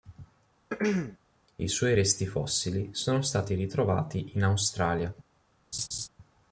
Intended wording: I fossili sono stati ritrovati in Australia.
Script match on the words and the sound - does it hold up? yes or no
no